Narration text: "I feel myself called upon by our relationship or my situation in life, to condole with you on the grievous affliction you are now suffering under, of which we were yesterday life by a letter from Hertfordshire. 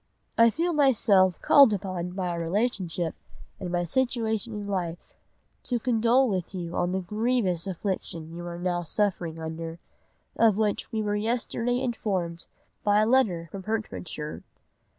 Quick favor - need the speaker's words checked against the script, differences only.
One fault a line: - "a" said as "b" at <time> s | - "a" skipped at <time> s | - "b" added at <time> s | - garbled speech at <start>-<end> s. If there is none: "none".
- "or" said as "and" at 3.6 s
- "life" said as "informed" at 11.8 s